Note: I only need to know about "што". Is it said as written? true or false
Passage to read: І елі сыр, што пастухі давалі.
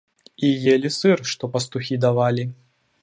true